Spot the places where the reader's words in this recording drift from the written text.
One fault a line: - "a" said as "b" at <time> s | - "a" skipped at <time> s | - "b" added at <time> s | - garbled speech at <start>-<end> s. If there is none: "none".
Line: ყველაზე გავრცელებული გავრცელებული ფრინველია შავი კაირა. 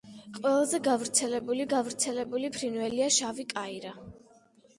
none